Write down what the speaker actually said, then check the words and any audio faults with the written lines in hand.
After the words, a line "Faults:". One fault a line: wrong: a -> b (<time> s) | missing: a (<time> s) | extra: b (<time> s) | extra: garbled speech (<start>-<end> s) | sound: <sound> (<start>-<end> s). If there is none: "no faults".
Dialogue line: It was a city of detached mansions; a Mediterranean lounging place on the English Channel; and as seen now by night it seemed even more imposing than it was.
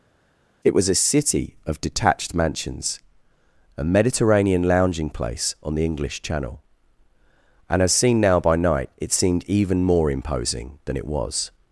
It was a city of detached mansions; a Mediterranean lounging place on the English Channel; and as seen now by night it seemed even more imposing than it was.
Faults:
no faults